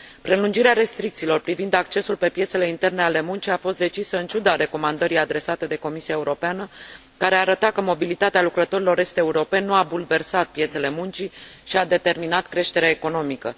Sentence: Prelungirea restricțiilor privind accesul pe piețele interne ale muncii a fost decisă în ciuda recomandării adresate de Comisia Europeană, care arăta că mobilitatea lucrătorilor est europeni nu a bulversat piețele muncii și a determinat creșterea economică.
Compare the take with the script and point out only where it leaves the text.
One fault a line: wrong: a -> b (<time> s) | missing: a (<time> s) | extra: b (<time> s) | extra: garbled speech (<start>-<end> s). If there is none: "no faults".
no faults